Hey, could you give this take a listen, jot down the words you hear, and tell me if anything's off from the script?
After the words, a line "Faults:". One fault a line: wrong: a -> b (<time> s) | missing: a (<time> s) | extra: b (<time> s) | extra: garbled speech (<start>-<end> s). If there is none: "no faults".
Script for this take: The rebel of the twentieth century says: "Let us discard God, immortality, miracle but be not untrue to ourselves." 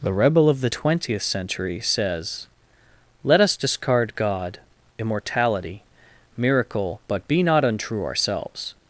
The rebel of the twentieth century says: "Let us discard God, immortality, miracle but be not untrue ourselves."
Faults:
missing: to (8.0 s)